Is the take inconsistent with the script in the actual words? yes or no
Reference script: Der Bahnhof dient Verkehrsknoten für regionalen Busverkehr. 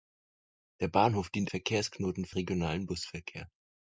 no